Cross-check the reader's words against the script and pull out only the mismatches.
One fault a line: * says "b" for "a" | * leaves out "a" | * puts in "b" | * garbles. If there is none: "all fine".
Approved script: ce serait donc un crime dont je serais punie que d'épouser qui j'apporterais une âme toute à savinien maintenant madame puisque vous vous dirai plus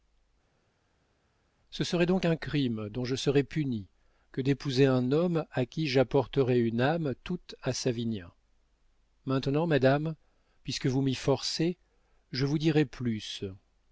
* puts in "un homme à"
* puts in "m'y forcez je"